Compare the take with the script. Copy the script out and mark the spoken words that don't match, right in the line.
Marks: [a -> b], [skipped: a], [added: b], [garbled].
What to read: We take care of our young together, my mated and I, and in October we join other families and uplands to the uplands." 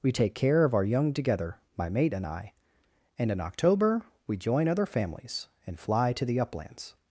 We take care of our young together, my [mated -> mate] and I, and in October we join other families and [uplands -> fly] to the uplands."